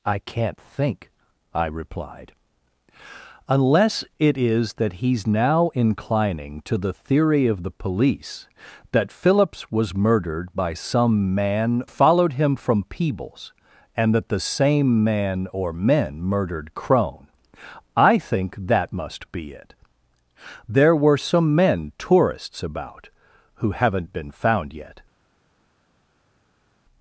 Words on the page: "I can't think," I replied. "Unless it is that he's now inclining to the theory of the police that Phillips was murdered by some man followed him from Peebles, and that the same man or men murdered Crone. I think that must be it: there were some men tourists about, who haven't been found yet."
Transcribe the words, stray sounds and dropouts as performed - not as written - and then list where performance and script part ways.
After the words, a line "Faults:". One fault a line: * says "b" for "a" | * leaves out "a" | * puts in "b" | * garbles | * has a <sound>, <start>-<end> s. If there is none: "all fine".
"I can't think," I replied. "Unless it is that he's now inclining to the theory of the police that Phillips was murdered by some man followed him from Peebles, and that the same man or men murdered Crone. I think that must be it: there were some men tourists about, who haven't been found yet."
Faults:
all fine